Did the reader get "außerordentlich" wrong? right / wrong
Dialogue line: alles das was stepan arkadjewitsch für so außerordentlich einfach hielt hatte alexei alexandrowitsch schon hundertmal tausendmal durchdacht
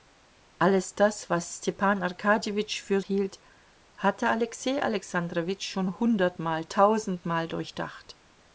wrong